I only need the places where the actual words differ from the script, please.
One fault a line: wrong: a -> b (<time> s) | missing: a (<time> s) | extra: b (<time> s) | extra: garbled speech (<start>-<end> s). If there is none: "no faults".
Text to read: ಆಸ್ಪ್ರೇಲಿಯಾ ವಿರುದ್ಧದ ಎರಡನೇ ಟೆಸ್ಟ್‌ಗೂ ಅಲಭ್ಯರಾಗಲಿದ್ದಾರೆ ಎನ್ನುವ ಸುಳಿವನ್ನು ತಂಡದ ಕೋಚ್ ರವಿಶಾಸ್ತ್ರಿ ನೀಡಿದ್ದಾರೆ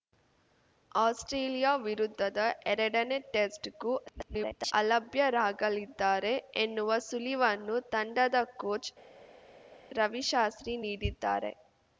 extra: garbled speech (4.1-4.7 s)